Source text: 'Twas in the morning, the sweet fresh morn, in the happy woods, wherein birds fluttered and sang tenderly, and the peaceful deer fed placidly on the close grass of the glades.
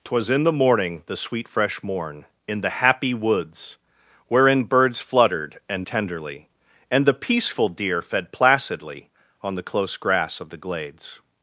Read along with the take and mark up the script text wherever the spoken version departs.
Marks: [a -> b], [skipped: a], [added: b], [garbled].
'Twas in the morning, the sweet fresh morn, in the happy woods, wherein birds fluttered and [skipped: sang] tenderly, and the peaceful deer fed placidly on the close grass of the glades.